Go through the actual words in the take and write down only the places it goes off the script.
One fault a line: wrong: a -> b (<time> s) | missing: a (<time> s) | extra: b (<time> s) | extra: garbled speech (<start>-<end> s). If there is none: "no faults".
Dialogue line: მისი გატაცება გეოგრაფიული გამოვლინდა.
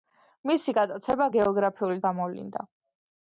no faults